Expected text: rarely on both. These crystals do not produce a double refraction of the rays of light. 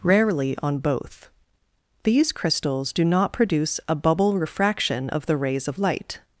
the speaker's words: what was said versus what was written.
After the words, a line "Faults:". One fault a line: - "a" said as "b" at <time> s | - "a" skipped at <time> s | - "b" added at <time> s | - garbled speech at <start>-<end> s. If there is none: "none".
rarely on both. These crystals do not produce a bubble refraction of the rays of light.
Faults:
- "double" said as "bubble" at 3.9 s